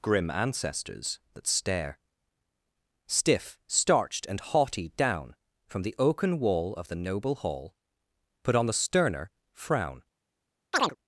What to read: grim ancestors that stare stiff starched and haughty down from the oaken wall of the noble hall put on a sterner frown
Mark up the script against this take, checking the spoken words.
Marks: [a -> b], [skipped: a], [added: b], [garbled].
grim ancestors that stare stiff starched and haughty down from the oaken wall of the noble hall put on [a -> the] sterner frown